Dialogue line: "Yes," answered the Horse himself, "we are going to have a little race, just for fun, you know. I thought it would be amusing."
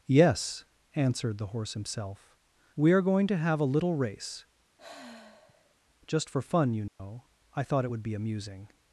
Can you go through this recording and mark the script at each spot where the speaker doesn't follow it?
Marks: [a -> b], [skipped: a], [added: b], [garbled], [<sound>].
"Yes," answered the Horse himself, "we are going to have a little race, [sigh] just for fun, you know. [dropout] I thought it would be amusing."